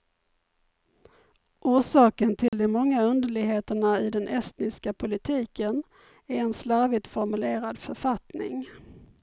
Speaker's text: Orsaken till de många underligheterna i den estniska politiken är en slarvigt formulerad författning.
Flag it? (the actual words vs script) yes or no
no